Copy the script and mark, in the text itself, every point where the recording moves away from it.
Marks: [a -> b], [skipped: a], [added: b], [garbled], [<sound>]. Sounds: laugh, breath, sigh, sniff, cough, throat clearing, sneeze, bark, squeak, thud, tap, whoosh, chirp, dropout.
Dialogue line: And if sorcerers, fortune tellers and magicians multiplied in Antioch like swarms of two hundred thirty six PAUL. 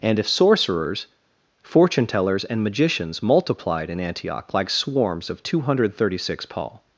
And if sorcerers, fortune tellers and magicians multiplied in Antioch like swarms of two hundred thirty six PAUL.